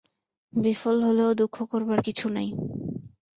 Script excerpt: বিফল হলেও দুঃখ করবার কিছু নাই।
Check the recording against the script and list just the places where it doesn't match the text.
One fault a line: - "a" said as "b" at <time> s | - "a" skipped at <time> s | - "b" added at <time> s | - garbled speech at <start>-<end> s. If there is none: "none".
none